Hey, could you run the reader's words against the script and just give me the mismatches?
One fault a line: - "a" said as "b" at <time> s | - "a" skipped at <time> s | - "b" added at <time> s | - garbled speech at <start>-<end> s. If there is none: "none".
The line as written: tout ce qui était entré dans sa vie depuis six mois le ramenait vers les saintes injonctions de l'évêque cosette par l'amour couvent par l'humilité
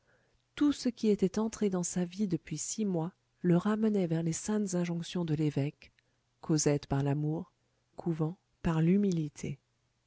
none